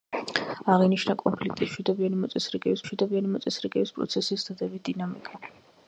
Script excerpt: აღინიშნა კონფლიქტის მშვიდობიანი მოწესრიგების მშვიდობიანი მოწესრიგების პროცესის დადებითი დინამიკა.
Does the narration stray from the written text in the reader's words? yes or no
no